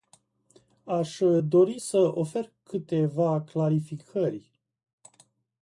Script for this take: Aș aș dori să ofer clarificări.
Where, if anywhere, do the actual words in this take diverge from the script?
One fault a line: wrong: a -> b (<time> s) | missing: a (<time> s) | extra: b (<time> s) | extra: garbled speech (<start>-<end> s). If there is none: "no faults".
missing: aș (1.2 s)
extra: câteva (2.6 s)